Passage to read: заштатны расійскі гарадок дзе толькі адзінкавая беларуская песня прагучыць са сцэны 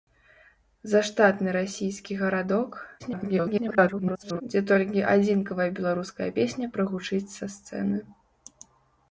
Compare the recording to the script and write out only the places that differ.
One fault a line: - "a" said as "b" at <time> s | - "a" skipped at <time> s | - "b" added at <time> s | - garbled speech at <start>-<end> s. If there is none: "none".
- garbled speech at 3.0-4.4 s